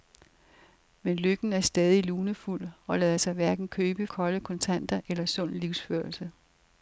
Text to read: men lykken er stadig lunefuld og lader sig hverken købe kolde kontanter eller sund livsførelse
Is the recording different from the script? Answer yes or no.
no